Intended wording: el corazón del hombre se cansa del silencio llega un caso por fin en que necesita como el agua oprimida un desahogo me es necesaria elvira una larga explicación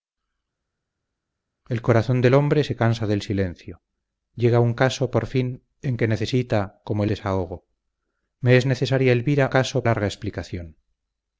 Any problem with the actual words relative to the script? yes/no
yes